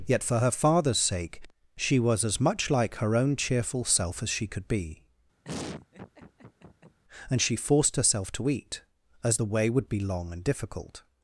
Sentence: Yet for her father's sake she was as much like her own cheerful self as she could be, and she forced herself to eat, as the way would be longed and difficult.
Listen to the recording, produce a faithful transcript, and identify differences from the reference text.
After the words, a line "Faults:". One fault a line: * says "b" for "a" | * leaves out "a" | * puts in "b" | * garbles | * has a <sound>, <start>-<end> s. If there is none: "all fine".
Yet for her father's sake she was as much like her own cheerful self as she could be, and she forced herself to eat, as the way would be long and difficult.
Faults:
* has a laugh, 5.4-7.0 s
* says "long" for "longed"